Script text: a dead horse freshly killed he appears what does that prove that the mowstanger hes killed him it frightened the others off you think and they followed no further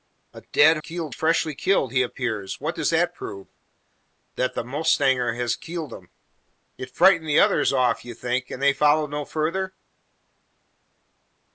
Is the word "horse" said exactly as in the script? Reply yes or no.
no